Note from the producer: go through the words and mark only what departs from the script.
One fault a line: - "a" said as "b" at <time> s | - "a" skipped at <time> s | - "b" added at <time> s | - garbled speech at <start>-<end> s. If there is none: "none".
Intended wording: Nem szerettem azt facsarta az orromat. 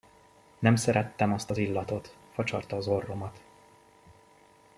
- "az illatot" added at 1.5 s